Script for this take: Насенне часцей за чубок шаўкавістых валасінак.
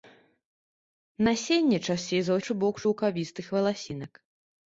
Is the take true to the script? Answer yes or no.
yes